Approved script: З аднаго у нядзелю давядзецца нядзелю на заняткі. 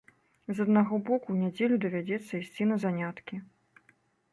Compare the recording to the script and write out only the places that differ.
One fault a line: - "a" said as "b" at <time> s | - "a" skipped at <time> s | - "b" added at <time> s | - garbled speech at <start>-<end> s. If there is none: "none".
- "боку" added at 1.1 s
- "нядзелю" said as "ісці" at 2.4 s